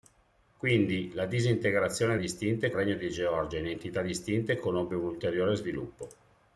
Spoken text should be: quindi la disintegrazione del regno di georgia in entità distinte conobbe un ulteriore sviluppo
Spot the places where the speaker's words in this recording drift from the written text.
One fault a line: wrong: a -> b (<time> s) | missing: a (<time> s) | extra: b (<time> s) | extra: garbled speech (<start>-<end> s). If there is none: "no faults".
wrong: del -> distinte (2.2 s)